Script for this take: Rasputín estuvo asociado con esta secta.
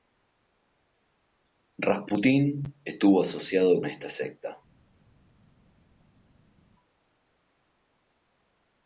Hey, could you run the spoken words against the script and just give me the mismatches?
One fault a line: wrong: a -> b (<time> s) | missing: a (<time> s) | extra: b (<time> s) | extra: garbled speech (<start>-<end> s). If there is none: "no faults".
missing: con (3.8 s)